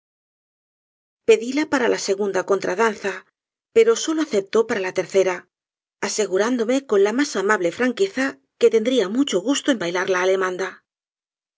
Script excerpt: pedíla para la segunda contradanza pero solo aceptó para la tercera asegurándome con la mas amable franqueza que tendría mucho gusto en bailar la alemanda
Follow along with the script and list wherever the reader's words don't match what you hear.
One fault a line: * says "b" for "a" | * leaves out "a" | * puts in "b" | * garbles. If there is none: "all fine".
all fine